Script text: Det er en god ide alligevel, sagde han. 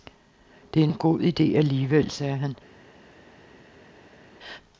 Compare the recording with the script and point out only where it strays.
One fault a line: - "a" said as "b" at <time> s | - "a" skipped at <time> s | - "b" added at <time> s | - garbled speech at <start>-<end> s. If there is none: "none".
none